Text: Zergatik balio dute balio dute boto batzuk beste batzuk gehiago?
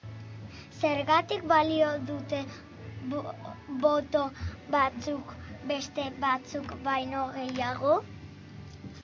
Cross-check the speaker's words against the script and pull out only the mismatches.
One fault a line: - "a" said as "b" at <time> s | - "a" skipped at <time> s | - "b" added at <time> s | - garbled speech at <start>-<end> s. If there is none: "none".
- "balio dute" skipped at 2.4 s
- "baino" added at 6.9 s